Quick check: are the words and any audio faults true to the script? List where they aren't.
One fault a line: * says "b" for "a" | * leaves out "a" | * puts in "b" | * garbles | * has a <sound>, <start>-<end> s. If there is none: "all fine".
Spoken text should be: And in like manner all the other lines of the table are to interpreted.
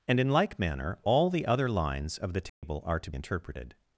* has a dropout, 2.5-2.6 s